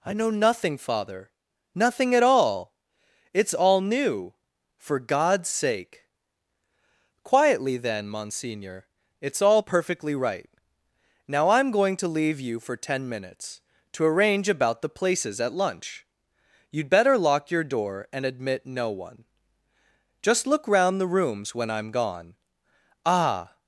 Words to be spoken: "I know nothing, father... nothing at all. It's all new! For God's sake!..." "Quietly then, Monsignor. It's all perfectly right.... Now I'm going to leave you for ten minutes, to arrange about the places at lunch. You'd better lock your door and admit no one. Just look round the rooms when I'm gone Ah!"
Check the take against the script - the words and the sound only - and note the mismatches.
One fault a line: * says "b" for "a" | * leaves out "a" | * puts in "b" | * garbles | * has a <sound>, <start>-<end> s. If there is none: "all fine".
all fine